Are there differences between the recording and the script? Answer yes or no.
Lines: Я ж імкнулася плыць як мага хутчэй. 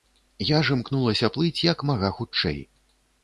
no